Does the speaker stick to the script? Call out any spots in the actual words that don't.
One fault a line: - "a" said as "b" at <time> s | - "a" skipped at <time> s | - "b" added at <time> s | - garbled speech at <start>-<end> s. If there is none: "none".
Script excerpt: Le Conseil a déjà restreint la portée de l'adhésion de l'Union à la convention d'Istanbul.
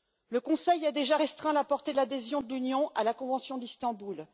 none